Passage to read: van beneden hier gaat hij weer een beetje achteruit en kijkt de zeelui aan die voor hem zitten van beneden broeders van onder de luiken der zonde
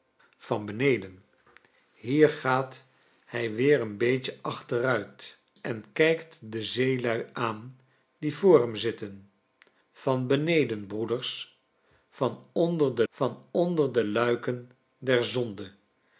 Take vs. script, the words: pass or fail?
fail